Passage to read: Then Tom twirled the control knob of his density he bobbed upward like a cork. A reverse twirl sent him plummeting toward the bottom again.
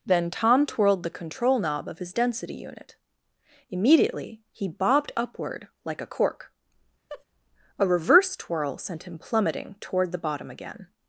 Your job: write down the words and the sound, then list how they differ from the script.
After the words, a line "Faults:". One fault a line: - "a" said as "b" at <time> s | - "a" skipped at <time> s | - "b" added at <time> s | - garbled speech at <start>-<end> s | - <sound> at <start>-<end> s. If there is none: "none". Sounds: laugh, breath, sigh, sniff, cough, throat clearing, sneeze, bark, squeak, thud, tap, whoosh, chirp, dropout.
Then Tom twirled the control knob of his density unit. Immediately he bobbed upward like a cork. A reverse twirl sent him plummeting toward the bottom again.
Faults:
- "unit Immediately" added at 2.5 s
- laugh at 7.1-7.2 s